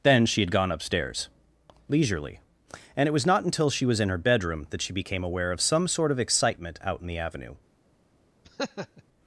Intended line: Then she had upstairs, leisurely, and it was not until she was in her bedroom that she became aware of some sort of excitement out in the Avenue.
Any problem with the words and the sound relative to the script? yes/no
yes